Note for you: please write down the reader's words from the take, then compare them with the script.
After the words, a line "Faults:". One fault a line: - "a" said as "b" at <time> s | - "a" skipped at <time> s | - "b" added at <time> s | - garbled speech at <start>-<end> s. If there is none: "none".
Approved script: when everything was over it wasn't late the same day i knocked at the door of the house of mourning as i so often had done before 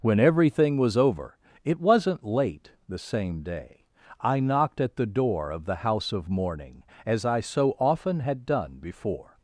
when everything was over it wasn't late the same day i knocked at the door of the house of mourning as i so often had done before
Faults:
none